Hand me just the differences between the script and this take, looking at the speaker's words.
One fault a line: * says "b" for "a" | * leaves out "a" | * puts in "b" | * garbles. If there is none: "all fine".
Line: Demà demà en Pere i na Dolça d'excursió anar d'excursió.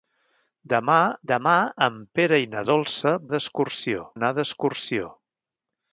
all fine